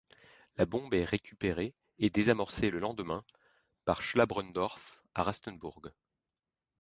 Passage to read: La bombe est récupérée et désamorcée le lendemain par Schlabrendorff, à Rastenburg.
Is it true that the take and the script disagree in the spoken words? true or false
false